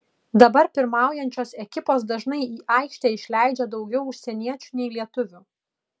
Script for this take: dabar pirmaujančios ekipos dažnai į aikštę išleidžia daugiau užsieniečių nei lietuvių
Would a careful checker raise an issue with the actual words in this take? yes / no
no